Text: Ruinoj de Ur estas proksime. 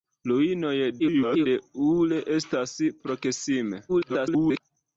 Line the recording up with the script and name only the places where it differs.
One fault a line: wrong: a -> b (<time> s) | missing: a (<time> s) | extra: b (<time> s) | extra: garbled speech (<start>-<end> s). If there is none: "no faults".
extra: garbled speech (1.0-1.5 s)
extra: garbled speech (3.9-4.6 s)